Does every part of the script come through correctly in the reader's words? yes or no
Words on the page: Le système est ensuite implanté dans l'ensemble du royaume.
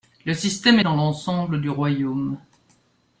no